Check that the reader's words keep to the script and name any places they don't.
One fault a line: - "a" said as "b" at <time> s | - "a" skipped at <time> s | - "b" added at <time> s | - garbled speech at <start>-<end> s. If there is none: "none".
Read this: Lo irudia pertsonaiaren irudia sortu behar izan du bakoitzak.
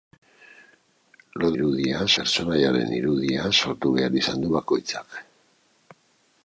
none